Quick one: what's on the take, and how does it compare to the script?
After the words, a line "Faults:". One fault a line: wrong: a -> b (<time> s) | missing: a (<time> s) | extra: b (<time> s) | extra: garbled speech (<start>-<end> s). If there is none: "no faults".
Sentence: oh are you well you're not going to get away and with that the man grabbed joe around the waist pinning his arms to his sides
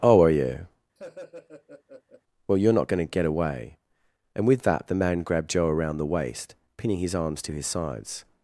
oh are you well you're not going to get away and with that the man grabbed joe around the waist pinning his arms to his sides
Faults:
no faults